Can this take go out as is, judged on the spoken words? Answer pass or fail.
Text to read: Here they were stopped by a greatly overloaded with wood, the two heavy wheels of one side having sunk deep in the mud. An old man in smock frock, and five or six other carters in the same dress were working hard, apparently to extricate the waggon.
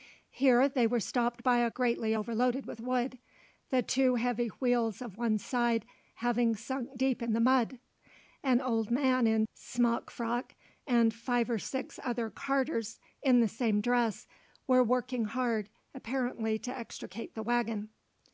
pass